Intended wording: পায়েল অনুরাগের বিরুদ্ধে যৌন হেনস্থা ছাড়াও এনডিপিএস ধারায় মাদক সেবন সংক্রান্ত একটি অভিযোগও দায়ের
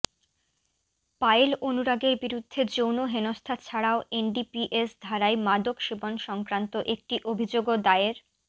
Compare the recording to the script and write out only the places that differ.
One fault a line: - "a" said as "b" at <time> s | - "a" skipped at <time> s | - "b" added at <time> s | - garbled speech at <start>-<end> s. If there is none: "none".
none